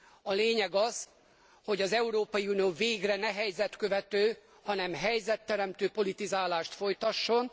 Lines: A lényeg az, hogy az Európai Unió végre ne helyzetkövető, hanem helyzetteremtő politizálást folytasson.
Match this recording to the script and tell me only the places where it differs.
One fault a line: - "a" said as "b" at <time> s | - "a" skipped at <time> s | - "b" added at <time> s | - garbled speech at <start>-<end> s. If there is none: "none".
none